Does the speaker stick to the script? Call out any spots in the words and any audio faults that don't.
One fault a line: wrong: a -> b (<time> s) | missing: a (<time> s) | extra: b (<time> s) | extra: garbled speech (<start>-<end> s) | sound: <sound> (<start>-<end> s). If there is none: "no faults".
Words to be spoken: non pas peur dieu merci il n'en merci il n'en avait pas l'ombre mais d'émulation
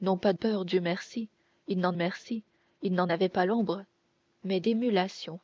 no faults